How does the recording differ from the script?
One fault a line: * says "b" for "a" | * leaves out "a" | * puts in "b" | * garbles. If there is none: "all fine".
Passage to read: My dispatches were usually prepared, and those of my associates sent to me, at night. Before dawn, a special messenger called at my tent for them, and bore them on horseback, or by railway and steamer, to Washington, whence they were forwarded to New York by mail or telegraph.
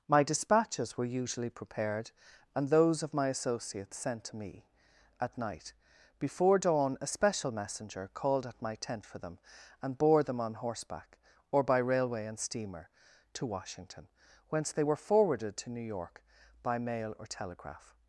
all fine